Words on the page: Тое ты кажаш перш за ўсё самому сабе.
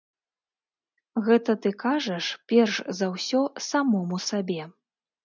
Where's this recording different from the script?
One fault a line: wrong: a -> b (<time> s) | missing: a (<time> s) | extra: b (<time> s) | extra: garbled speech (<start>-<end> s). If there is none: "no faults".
wrong: Тое -> Гэта (1.3 s)